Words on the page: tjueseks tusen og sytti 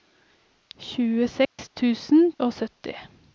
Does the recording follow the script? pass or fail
pass